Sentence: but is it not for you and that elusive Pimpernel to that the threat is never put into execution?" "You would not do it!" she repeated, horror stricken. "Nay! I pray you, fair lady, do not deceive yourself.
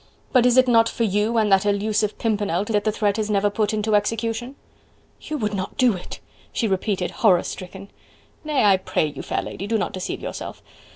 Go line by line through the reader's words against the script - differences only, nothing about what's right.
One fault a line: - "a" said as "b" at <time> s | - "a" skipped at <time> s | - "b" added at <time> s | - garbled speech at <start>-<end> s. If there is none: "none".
none